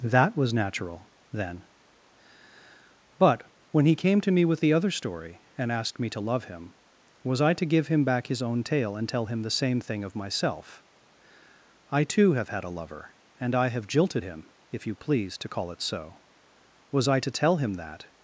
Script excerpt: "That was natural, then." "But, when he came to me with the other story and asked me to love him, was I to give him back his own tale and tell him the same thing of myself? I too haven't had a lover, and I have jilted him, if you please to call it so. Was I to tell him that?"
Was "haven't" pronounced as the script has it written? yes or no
no